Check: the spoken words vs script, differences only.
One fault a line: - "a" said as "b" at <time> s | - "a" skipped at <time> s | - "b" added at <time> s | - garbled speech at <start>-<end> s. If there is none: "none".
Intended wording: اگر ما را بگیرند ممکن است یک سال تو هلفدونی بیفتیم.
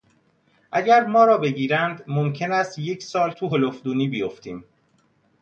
none